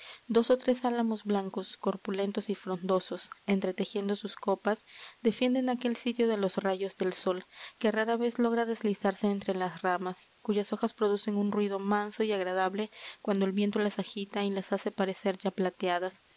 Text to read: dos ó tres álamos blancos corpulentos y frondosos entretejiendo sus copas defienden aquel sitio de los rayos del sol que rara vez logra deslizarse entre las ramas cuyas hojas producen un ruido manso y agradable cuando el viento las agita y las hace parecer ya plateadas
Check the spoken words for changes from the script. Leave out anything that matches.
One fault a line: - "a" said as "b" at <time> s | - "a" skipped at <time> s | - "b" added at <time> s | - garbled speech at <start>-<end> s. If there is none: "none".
none